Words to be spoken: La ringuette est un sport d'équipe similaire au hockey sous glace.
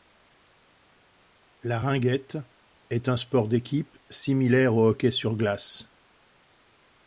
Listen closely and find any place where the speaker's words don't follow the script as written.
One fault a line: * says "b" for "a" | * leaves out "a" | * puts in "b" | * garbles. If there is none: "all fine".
* says "sur" for "sous"